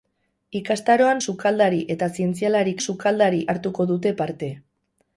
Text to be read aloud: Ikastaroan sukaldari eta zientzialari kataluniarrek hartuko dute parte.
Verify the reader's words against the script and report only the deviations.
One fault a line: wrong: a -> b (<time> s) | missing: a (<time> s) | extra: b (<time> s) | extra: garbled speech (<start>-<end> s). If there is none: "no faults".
wrong: kataluniarrek -> sukaldari (2.9 s)